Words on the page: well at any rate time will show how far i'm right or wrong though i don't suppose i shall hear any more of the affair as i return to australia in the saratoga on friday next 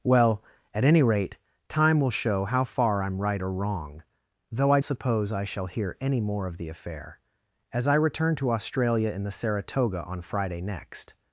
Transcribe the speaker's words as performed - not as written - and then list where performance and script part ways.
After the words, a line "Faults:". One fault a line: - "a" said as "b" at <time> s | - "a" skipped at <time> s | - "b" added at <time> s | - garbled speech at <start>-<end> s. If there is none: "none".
well at any rate time will show how far i'm right or wrong though i suppose i shall hear any more of the affair as i return to australia in the saratoga on friday next
Faults:
- "don't" skipped at 4.8 s